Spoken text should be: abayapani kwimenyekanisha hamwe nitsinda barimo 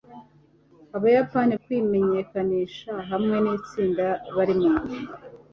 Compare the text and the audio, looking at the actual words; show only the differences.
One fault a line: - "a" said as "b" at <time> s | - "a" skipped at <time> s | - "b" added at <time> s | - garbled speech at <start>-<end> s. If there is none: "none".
none